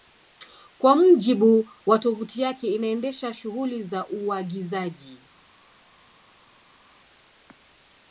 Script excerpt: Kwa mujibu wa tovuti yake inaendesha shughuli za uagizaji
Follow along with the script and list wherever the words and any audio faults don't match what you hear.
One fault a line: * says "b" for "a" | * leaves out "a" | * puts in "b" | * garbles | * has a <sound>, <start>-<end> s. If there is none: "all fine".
all fine